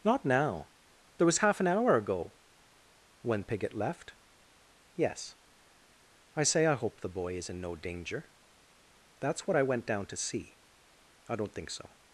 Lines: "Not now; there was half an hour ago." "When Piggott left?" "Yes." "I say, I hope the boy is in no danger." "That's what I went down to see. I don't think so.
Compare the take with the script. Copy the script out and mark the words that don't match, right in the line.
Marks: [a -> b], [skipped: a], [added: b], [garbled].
"Not now; there was half an hour ago." "When Piggott left?" "Yes." "I say, I hope the boy is in no danger." "That's what I went down to see. I don't think so.